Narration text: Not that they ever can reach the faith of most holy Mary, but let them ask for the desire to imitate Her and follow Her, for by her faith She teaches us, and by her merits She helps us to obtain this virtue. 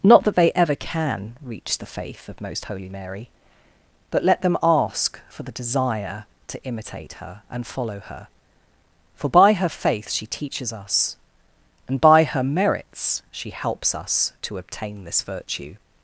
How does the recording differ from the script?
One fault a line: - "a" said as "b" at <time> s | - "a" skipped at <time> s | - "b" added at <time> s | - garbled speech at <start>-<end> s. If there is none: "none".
none